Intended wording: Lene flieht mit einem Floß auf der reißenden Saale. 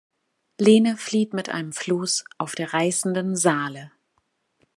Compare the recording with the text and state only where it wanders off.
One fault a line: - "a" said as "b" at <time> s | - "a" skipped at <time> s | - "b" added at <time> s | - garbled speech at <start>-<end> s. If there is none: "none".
none